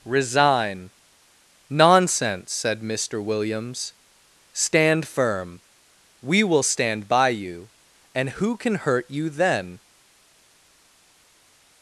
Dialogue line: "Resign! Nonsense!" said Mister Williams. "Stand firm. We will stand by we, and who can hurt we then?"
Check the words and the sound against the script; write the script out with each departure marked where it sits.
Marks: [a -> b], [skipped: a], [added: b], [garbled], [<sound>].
"Resign! Nonsense!" said Mister Williams. "Stand firm. We will stand by [we, -> you] and who can hurt [we -> you] then?"